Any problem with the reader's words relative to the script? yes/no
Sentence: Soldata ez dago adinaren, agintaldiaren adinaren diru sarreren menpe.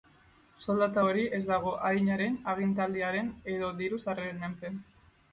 yes